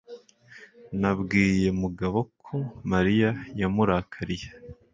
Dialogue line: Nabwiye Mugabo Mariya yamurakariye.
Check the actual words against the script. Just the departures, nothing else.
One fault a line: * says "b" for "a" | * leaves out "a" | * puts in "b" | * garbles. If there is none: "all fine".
* puts in "ko"